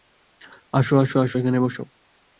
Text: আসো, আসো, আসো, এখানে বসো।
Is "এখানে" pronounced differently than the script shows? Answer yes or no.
no